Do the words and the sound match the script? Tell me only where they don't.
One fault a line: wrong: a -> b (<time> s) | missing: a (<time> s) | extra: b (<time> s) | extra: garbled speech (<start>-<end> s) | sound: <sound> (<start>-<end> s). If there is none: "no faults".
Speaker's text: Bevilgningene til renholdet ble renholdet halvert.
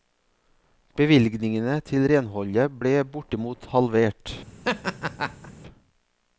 wrong: renholdet -> bortimot (3.2 s)
sound: laugh (4.6-5.5 s)